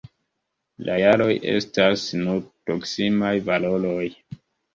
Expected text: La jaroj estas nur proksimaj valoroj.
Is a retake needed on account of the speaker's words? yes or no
no